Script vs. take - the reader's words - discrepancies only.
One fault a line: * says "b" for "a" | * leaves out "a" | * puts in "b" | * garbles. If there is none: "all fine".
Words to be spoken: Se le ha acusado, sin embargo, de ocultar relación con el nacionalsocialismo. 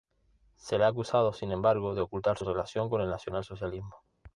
all fine